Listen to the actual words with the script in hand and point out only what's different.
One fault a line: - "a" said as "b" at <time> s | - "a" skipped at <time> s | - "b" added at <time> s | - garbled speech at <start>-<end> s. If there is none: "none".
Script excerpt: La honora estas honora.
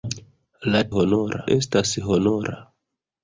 none